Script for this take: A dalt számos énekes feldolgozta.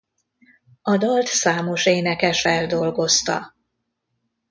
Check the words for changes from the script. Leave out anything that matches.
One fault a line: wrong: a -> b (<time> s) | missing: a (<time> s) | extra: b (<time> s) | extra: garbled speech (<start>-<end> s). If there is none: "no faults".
no faults